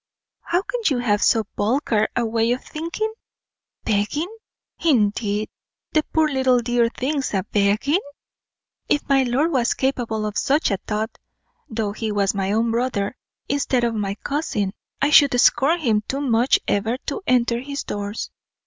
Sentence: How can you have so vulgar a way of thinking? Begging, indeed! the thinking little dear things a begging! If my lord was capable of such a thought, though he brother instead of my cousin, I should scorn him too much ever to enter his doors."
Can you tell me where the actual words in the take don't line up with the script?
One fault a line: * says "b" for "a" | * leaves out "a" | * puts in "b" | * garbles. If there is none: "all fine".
* says "poor" for "thinking"
* puts in "was my own"